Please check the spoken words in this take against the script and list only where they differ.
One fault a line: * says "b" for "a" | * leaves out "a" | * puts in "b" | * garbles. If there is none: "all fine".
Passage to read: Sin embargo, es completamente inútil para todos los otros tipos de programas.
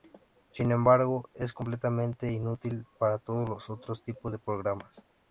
all fine